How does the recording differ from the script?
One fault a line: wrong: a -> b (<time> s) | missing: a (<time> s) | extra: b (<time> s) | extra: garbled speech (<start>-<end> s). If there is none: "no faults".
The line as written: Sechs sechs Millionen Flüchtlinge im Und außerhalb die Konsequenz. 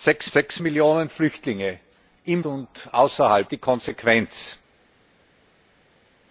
no faults